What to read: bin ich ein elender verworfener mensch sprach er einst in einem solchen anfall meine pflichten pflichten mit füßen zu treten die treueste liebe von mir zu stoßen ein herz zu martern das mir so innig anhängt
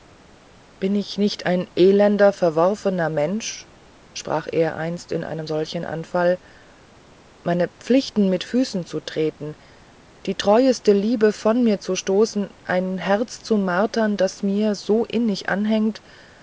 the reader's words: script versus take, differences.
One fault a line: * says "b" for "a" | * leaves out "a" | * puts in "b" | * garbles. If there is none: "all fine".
* puts in "nicht"
* leaves out "pflichten"